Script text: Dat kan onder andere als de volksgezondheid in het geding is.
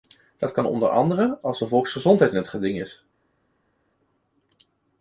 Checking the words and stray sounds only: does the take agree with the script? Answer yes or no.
yes